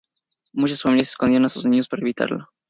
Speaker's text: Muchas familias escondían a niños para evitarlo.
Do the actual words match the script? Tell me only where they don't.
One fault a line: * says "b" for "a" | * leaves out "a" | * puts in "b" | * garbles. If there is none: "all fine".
* puts in "sus"